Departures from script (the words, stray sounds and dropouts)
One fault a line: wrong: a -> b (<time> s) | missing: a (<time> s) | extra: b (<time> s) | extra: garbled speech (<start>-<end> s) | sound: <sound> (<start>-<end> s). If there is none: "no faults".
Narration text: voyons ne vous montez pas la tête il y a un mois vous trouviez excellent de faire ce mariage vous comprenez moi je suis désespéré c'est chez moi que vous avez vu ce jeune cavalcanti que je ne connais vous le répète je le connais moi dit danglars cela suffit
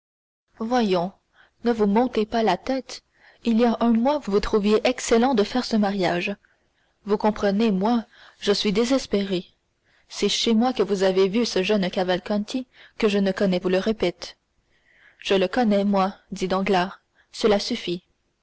no faults